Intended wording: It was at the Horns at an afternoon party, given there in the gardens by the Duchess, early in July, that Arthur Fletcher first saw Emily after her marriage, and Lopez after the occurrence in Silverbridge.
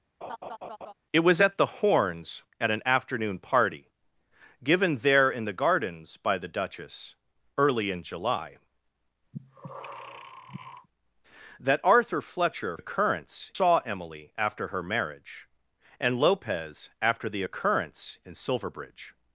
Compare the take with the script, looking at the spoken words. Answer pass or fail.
fail